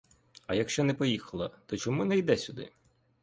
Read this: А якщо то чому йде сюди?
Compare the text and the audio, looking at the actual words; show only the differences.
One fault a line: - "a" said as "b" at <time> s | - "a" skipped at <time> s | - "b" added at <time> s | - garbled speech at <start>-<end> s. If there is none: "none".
- "не поїхала" added at 0.8 s
- "не" added at 2.0 s